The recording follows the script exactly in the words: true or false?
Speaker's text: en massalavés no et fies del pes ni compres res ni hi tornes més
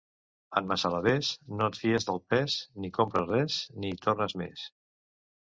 true